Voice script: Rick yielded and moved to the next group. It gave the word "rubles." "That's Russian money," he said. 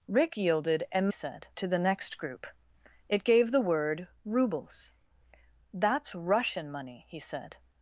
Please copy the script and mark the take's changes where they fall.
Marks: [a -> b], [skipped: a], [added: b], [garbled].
Rick yielded and [moved -> said] to the next group. It gave the word "rubles." "That's Russian money," he said.